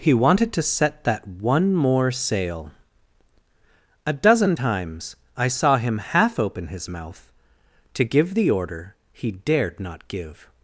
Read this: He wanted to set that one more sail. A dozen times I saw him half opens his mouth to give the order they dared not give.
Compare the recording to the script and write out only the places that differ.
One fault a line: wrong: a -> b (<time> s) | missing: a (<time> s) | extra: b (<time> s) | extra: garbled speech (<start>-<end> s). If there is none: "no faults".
wrong: opens -> open (6.4 s)
wrong: they -> he (9.1 s)